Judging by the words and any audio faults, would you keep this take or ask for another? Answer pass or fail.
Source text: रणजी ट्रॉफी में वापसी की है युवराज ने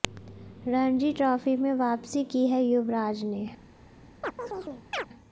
fail